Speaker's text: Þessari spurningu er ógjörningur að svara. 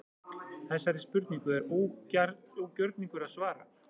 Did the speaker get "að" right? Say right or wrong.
right